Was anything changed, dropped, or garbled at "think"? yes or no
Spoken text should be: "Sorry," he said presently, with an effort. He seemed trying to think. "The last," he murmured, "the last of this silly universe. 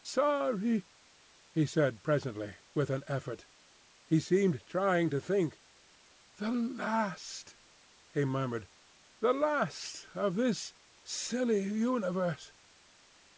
no